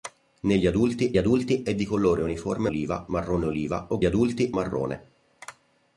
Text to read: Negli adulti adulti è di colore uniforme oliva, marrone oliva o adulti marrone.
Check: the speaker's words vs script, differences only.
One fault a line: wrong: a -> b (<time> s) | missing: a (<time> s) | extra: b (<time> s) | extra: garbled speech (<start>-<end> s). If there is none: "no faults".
no faults